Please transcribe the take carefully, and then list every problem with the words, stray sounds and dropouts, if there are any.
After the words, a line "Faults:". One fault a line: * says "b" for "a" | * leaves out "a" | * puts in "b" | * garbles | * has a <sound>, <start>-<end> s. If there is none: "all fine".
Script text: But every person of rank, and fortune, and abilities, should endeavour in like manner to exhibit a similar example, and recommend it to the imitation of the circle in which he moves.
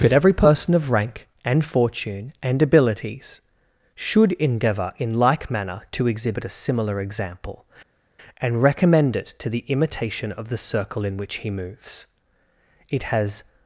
But every person of rank, and fortune, and abilities, should endeavour in like manner to exhibit a similar example, and recommend it to the imitation of the circle in which he moves. It has
Faults:
* puts in "It has"